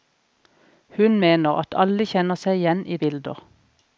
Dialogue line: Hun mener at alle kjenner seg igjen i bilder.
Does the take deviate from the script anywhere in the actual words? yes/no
no